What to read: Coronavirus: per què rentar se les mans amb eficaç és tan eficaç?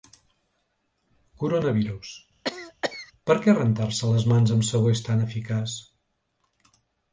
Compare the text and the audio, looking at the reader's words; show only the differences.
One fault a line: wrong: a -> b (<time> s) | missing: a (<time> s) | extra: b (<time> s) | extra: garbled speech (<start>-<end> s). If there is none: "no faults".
wrong: eficaç -> sabó (4.7 s)